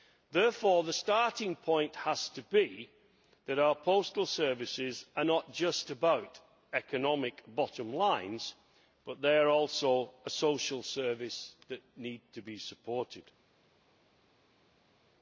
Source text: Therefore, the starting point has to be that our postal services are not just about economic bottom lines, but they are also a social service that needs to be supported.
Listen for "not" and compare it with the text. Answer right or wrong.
right